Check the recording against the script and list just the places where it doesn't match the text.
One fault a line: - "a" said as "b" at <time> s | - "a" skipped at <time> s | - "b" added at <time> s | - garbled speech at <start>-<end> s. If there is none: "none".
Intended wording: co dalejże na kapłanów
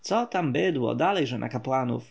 - "tam bydło" added at 0.2 s